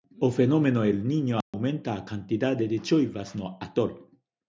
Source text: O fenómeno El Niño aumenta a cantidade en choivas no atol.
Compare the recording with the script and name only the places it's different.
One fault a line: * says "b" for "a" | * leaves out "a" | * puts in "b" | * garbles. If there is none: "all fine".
* says "de" for "en"